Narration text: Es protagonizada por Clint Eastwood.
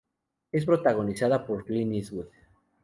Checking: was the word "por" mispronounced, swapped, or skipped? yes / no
no